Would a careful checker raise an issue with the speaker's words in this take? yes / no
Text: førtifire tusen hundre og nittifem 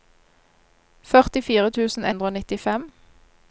no